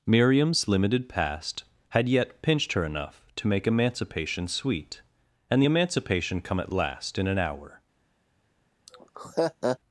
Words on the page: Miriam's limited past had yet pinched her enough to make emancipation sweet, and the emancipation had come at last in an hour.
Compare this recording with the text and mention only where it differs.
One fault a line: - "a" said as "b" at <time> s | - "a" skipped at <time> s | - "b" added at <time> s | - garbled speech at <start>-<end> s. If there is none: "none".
- "had" skipped at 6.4 s